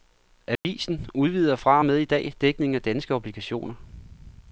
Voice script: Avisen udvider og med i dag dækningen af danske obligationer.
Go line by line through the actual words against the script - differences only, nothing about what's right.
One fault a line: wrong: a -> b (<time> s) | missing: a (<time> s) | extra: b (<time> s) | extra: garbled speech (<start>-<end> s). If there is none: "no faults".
extra: fra (1.5 s)